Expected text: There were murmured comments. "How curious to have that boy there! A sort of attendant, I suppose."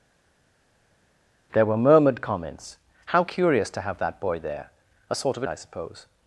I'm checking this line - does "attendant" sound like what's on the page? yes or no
no